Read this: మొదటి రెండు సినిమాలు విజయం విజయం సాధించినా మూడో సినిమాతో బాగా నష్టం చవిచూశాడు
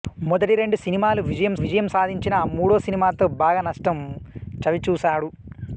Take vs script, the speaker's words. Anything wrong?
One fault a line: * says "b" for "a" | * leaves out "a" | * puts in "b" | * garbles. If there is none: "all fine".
all fine